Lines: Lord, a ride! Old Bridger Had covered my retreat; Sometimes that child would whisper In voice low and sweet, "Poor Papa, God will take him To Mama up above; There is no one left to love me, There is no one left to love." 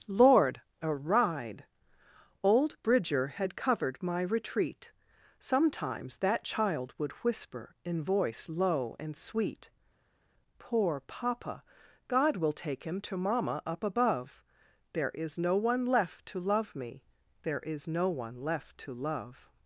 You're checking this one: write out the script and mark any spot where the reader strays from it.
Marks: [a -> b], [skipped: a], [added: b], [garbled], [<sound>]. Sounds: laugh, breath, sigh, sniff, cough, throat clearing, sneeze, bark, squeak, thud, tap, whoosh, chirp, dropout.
Lord, a ride! Old Bridger Had covered my retreat; Sometimes that child would whisper In voice low and sweet, "Poor Papa, God will take him To Mama up above; There is no one left to love me, There is no one left to love."